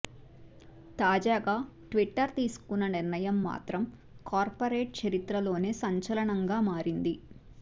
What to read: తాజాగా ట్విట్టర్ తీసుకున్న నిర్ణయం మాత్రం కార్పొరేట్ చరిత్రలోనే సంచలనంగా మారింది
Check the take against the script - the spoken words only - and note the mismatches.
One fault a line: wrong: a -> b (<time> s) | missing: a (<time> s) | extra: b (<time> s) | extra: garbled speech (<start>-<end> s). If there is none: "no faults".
no faults